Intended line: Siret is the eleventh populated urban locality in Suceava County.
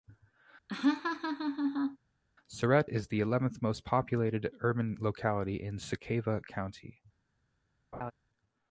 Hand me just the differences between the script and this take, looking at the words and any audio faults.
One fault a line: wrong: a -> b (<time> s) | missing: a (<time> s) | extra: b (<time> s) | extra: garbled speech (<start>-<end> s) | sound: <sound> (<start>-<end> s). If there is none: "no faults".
sound: laugh (0.7-2.0 s)
extra: most (3.6 s)
sound: laugh (7.9-8.1 s)